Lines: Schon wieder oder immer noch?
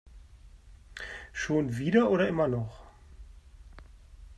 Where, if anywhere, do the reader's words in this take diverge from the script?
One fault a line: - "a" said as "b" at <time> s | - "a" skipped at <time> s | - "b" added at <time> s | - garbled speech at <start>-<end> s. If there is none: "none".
none